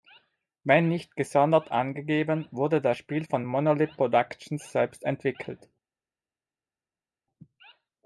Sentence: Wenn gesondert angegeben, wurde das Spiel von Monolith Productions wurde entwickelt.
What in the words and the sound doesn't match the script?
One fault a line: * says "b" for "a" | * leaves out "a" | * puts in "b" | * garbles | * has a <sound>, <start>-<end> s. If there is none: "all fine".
* puts in "nicht"
* says "selbst" for "wurde"